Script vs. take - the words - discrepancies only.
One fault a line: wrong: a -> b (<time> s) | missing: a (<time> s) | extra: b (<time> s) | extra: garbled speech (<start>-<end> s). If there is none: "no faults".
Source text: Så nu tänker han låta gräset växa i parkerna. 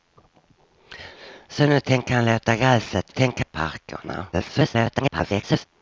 wrong: växa -> tänker (3.1 s)
extra: garbled speech (4.3-5.7 s)